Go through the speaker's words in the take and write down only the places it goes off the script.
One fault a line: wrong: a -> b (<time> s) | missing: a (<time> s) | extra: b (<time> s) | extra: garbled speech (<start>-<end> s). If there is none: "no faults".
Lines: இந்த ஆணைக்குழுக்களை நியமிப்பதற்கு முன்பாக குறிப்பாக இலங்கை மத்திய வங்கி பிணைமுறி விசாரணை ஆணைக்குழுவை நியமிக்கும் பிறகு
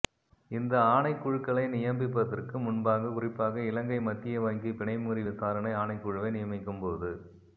wrong: பிறகு -> போது (6.8 s)